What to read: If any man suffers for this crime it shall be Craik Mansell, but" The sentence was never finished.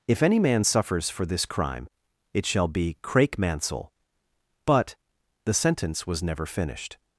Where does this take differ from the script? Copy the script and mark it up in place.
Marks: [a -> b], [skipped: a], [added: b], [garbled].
If any man suffers for this crime it shall be Craik Mansell, but" The sentence was never finished.